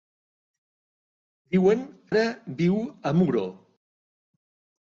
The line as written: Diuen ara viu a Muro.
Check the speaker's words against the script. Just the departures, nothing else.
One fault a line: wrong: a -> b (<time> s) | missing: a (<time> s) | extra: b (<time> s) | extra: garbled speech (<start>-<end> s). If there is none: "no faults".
no faults